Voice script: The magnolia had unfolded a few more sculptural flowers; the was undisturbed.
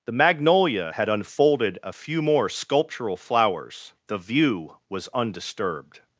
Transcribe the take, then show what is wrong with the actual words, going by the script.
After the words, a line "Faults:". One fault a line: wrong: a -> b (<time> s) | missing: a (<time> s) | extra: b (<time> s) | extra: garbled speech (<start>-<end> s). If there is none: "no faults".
The magnolia had unfolded a few more sculptural flowers; the view was undisturbed.
Faults:
extra: view (4.2 s)